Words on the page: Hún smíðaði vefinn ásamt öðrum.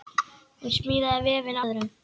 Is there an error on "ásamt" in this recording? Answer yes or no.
yes